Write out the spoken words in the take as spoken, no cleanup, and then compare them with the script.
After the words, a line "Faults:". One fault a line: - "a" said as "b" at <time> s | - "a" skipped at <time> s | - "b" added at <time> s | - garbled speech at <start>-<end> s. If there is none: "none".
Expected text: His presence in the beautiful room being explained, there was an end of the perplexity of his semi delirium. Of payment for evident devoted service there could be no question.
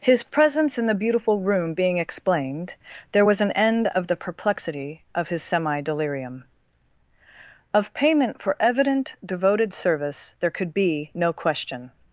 His presence in the beautiful room being explained, there was an end of the perplexity of his semi delirium. Of payment for evident devoted service there could be no question.
Faults:
none